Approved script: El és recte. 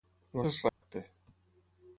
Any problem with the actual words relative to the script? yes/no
no